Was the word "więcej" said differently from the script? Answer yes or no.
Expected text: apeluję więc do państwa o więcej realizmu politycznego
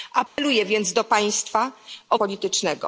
yes